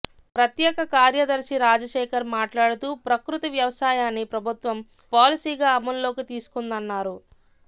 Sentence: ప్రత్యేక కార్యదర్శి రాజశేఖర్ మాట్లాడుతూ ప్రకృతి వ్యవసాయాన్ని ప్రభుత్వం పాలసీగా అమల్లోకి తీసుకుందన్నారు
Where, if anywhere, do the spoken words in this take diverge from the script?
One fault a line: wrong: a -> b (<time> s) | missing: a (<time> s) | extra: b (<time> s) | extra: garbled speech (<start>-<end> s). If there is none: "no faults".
no faults